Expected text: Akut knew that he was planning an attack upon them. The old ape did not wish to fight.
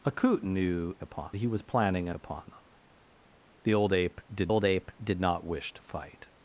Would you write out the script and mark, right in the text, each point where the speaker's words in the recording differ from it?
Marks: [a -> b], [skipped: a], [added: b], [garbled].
Akut knew [that -> upon] he was planning an [skipped: attack] upon them. The old ape did [added: old ape did] not wish to fight.